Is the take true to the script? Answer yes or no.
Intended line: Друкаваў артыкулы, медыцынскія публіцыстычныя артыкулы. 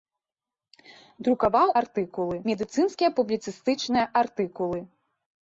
yes